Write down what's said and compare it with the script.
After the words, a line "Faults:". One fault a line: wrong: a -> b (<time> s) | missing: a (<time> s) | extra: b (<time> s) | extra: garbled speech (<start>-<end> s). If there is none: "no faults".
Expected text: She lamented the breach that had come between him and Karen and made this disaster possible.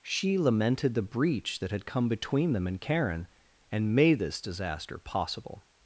She lamented the breach that had come between them and Karen and made this disaster possible.
Faults:
wrong: him -> them (2.5 s)